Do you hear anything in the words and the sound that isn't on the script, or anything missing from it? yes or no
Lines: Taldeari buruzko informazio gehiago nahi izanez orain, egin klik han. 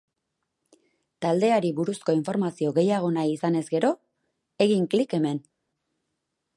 yes